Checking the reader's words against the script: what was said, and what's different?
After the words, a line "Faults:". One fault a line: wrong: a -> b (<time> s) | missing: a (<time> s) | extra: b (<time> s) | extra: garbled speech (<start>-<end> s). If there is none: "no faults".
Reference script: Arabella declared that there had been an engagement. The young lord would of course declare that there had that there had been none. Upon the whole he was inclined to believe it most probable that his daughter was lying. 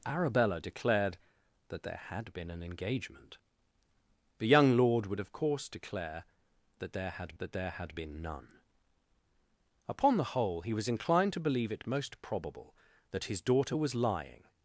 Arabella declared that there had been an engagement. The young lord would of course declare that there had that there had been none. Upon the whole he was inclined to believe it most probable that his daughter was lying.
Faults:
no faults